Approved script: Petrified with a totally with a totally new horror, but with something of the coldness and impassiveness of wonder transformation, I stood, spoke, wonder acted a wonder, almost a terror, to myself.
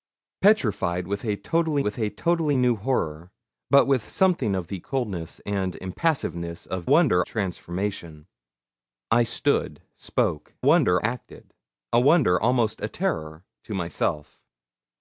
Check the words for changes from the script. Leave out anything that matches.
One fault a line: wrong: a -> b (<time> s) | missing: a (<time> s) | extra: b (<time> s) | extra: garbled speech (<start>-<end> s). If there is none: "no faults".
no faults